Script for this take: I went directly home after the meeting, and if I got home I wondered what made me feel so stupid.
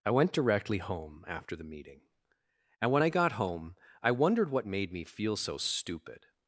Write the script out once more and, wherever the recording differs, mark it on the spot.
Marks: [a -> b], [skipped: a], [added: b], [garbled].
I went directly home after the meeting, and [if -> when] I got home I wondered what made me feel so stupid.